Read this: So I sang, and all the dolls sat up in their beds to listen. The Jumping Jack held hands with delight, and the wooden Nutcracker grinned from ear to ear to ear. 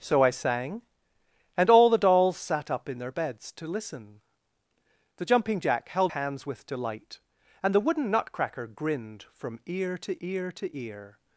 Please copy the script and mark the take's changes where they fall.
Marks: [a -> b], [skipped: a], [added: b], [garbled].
So I sang, and all the dolls sat up in their beds to listen. The Jumping Jack held hands with delight, and the wooden Nutcracker grinned from ear to ear to ear.